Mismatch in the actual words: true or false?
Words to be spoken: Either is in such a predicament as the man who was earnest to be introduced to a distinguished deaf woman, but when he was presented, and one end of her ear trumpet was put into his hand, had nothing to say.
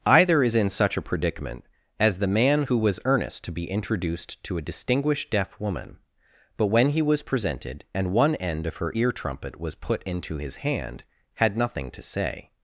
false